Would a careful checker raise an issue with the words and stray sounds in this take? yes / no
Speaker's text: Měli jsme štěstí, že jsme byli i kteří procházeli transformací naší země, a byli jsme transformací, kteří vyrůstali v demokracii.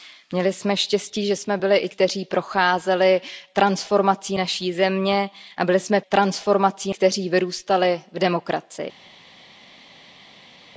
no